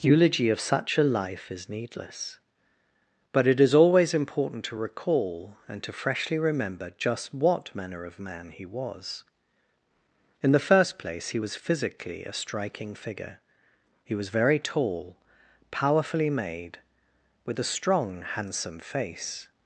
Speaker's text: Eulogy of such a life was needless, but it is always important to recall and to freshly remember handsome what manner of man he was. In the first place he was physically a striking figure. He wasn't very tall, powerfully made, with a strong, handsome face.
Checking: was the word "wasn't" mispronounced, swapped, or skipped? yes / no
yes